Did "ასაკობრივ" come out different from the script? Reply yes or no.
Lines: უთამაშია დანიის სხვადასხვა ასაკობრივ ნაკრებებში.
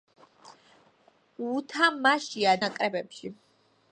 yes